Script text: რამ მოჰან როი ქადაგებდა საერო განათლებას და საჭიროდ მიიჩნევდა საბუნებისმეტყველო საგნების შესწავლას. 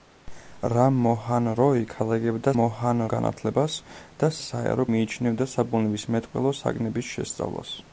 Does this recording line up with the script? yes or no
no